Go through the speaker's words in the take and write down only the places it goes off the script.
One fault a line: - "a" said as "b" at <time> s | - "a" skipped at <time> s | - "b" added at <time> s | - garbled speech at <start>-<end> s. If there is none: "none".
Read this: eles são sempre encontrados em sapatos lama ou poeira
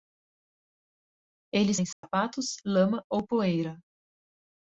- "são sempre encontrados" skipped at 1.8 s